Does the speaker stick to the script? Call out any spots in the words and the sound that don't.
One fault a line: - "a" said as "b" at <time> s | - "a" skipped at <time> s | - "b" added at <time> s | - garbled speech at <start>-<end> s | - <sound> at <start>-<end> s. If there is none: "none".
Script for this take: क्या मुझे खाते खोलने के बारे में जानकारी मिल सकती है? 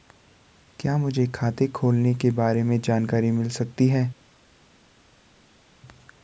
none